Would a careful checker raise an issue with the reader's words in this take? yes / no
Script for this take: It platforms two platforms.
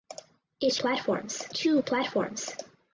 no